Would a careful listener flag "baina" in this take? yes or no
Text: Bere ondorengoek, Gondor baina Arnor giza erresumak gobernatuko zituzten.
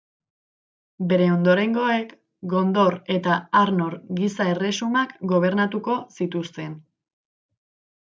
yes